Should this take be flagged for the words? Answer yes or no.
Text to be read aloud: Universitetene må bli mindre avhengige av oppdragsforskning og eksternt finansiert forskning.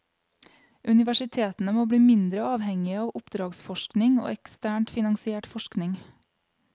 no